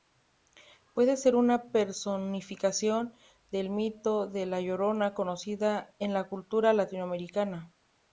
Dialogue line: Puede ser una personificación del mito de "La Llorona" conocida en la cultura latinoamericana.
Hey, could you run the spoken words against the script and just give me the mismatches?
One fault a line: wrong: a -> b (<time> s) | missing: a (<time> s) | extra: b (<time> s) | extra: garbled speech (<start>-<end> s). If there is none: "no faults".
no faults